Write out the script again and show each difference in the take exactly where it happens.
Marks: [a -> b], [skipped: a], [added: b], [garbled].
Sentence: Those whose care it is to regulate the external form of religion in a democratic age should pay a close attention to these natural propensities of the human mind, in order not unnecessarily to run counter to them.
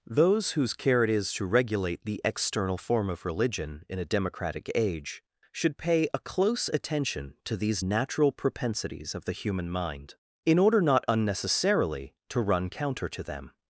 Those whose care it is to regulate the external form of religion in a democratic age should pay a close attention to these natural propensities of the human mind, in order not unnecessarily to run counter to them.